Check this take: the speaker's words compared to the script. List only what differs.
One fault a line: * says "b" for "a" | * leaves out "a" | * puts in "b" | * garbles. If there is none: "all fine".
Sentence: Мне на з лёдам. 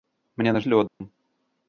all fine